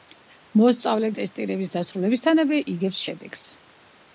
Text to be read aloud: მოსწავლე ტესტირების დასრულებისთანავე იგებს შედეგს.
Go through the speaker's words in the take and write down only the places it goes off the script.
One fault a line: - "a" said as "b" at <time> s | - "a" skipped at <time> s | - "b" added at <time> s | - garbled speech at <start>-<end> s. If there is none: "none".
none